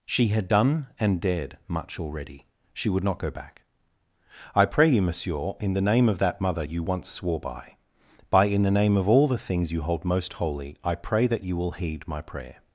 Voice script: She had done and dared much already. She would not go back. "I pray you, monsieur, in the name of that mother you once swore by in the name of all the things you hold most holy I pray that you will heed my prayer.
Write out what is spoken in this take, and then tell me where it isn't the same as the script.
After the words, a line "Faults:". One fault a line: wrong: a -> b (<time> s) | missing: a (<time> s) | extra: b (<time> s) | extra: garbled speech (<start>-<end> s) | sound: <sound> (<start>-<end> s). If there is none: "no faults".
She had done and dared much already. She would not go back. "I pray you, monsieur, in the name of that mother you once swore by by in the name of all the things you hold most holy I pray that you will heed my prayer.
Faults:
extra: by (8.3 s)